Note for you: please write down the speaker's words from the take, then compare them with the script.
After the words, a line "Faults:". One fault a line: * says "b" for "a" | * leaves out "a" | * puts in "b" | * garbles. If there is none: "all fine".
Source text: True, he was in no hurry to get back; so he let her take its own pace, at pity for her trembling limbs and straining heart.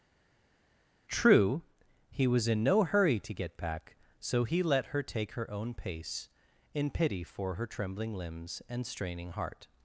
True, he was in no hurry to get back; so he let her take her own pace, in pity for her trembling limbs and straining heart.
Faults:
* says "her" for "its"
* says "in" for "at"